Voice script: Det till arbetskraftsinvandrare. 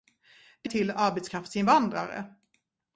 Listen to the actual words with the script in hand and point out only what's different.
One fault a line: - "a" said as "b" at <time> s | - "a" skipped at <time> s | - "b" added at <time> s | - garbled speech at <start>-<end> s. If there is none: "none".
none